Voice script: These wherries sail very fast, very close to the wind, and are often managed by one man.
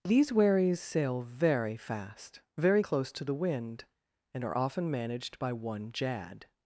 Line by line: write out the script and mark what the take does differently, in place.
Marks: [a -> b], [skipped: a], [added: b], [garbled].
These wherries sail very fast, very close to the wind, and are often managed by one [man. -> jad]